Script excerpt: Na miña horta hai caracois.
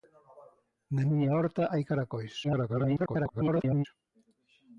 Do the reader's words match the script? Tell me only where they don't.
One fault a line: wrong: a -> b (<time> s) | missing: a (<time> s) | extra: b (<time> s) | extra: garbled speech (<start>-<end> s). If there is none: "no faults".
extra: garbled speech (2.4-3.9 s)